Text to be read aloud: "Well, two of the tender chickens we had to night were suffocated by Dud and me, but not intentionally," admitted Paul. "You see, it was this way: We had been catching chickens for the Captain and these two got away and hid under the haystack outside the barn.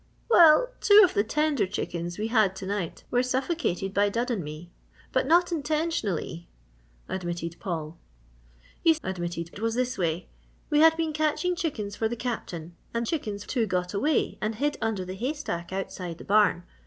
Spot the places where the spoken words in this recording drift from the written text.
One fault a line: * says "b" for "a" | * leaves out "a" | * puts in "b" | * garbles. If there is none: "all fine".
* says "admitted" for "see"
* says "chickens" for "these"